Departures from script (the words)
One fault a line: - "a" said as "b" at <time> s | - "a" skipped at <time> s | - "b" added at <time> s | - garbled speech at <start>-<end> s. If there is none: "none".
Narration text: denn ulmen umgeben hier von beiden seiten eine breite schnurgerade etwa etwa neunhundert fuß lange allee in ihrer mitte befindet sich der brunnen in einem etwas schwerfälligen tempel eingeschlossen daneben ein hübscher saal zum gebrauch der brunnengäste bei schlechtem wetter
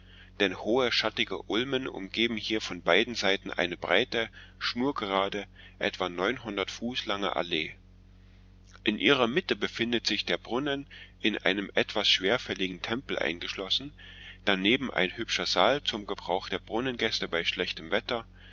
- "hohe schattige" added at 0.6 s
- "etwa" skipped at 6.1 s